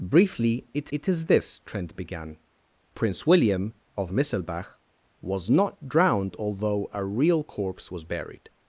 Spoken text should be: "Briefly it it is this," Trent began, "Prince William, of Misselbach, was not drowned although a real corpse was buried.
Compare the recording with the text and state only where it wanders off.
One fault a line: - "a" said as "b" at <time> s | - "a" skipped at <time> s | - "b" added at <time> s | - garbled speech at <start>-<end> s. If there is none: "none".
none